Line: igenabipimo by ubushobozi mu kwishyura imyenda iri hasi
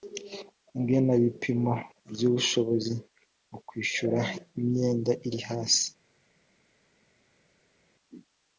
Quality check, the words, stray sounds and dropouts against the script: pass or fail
pass